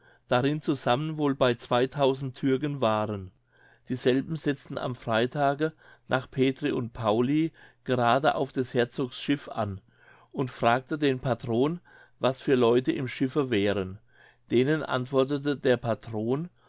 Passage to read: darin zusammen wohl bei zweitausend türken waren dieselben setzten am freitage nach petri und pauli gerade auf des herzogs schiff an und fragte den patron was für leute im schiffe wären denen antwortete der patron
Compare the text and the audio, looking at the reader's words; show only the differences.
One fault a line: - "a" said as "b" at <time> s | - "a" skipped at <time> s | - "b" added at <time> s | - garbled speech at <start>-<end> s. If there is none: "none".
none